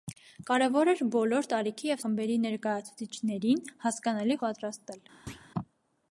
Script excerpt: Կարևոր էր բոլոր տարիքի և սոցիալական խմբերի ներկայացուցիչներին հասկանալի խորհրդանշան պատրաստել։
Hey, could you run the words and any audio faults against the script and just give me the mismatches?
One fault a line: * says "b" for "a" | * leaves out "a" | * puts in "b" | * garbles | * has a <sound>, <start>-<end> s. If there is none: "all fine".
* leaves out "սոցիալական"
* leaves out "խորհրդանշան"
* has a thud, 5.3-5.5 s